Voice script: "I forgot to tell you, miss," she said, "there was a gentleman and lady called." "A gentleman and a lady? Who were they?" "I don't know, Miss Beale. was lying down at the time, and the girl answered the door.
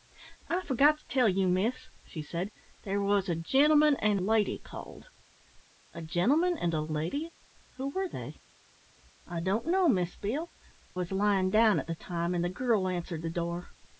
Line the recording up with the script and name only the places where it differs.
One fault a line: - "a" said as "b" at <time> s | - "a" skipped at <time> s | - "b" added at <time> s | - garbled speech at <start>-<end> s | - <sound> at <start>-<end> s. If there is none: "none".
none